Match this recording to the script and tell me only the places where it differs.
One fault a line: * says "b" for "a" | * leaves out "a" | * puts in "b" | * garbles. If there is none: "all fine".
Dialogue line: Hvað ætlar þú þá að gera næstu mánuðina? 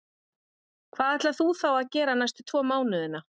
* puts in "tvo"